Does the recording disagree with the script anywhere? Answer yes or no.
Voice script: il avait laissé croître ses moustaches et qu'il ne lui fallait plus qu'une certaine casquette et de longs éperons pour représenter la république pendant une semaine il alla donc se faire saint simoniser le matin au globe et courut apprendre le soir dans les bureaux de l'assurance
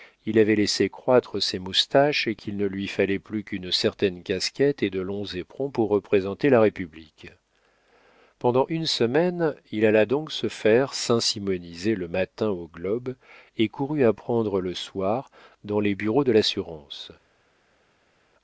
no